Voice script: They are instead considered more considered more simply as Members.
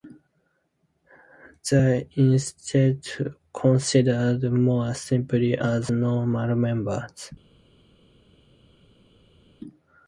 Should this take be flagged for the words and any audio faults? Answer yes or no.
yes